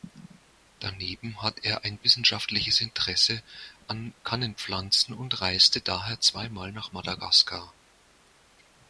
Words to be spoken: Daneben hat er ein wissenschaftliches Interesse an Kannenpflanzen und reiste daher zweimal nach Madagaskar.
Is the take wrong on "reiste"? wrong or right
right